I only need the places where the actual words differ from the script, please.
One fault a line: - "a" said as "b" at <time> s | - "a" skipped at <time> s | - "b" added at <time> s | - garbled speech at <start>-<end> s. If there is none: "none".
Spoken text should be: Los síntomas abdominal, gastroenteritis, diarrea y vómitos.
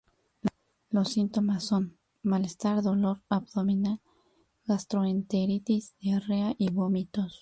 - "son malestar dolor" added at 1.6 s